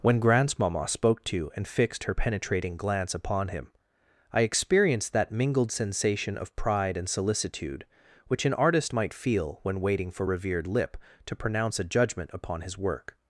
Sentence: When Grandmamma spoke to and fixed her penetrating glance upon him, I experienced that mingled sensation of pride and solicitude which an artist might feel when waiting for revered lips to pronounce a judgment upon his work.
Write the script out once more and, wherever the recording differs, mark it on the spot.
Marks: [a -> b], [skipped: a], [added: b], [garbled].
When Grandmamma spoke to and fixed her penetrating glance upon him, I experienced that mingled sensation of pride and solicitude which an artist might feel when waiting for revered [lips -> lip] to pronounce a judgment upon his work.